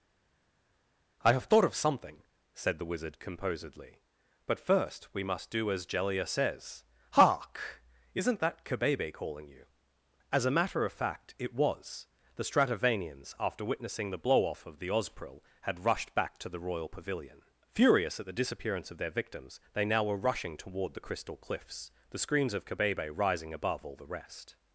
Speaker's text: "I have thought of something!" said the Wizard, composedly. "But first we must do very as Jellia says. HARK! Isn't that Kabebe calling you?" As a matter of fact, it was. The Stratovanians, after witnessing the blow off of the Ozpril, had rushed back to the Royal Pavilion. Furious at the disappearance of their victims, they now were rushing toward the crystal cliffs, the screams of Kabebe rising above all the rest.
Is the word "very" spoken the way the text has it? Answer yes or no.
no